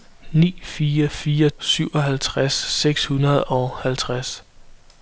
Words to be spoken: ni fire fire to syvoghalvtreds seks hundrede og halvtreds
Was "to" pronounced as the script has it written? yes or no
no